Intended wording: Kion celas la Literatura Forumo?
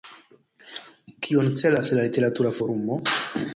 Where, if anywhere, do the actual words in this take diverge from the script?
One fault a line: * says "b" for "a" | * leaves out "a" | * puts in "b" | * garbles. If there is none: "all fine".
all fine